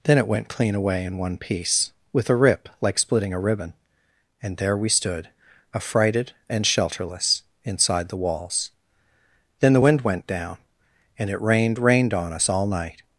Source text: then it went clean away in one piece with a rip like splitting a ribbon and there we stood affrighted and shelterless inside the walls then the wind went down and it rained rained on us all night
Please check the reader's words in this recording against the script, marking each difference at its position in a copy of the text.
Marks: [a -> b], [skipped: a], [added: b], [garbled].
then it went clean away in one piece with a rip like splitting a ribbon and there we stood affrighted and shelterless inside the walls then the wind went down and it rained rained on us all night